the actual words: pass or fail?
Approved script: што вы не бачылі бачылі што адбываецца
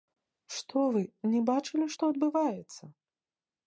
fail